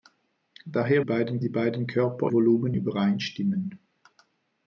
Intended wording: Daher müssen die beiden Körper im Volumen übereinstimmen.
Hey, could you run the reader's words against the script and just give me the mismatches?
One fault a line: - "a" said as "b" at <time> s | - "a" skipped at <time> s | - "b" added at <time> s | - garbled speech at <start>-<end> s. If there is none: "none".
- "müssen" said as "beiden" at 1.0 s
- "im" skipped at 2.3 s